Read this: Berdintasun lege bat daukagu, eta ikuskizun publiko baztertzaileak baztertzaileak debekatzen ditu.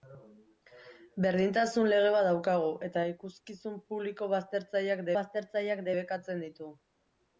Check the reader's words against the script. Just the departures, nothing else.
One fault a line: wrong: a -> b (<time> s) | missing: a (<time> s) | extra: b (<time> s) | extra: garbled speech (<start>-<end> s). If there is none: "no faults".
no faults